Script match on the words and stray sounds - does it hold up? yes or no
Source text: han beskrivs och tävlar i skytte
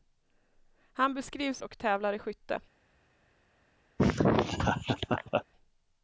no